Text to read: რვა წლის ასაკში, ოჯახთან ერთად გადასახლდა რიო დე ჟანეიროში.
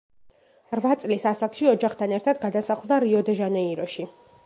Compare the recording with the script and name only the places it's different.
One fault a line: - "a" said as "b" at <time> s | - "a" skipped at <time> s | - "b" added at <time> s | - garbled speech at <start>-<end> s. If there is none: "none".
none